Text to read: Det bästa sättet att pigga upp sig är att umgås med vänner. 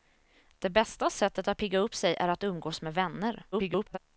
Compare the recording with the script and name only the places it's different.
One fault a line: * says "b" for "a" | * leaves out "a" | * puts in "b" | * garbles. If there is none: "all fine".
* garbles